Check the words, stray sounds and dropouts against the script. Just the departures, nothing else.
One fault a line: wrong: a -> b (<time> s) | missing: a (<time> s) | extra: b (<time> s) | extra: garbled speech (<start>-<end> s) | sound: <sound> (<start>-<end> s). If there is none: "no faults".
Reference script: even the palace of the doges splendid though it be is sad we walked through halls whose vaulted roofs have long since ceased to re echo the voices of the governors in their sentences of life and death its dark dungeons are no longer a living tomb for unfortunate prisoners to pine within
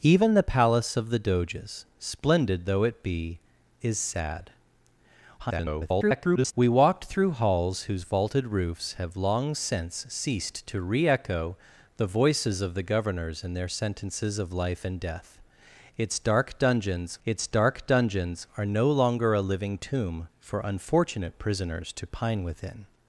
extra: garbled speech (5.4-6.5 s)
extra: its dark dungeons (17.3 s)